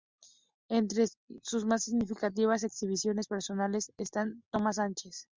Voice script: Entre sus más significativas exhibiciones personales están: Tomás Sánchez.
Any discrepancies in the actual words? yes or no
no